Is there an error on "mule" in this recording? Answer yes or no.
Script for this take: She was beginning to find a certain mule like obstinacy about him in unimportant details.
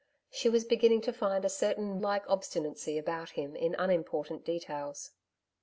yes